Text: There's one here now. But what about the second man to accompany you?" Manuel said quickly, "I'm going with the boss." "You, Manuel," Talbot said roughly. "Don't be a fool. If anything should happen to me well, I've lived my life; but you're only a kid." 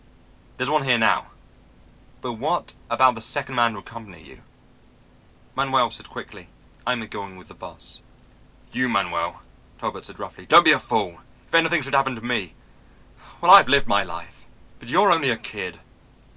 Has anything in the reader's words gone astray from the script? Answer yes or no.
no